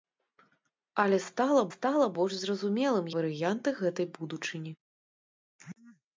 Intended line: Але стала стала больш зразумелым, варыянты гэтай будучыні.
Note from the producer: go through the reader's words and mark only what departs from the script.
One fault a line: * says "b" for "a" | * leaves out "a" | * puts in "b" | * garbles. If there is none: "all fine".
all fine